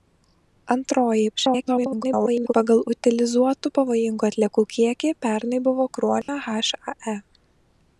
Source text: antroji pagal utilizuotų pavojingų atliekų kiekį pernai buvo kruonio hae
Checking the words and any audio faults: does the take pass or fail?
fail